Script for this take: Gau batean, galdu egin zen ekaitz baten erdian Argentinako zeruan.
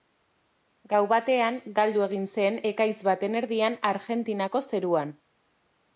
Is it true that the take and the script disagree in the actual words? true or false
false